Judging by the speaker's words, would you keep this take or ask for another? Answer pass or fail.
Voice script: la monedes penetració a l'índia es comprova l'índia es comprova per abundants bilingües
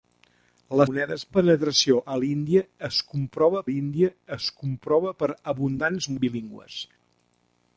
pass